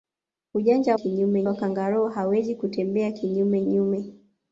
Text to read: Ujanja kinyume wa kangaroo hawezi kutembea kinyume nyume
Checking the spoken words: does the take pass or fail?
pass